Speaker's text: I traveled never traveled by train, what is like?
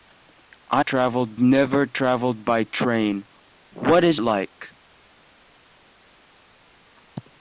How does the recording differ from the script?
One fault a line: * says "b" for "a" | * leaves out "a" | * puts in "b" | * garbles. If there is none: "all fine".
all fine